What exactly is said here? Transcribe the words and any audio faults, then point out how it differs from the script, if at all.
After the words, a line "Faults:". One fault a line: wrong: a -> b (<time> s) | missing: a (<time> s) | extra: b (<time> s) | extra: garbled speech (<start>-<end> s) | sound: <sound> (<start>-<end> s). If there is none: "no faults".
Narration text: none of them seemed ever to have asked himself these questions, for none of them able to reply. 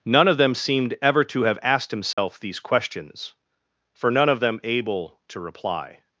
none of them seemed ever to have asked himself these questions, for none of them able to reply.
Faults:
sound: dropout (2.1-2.2 s)